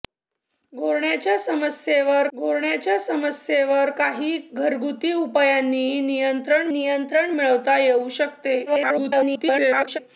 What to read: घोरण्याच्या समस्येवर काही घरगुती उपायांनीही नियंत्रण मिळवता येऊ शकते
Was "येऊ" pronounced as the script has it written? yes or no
yes